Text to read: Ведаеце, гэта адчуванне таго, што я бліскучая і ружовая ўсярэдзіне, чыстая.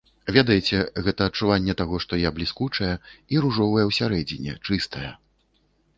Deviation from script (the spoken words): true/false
false